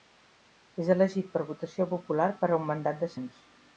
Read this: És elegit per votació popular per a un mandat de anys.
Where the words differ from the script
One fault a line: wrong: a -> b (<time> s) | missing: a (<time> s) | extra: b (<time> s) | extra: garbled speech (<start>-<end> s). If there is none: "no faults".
no faults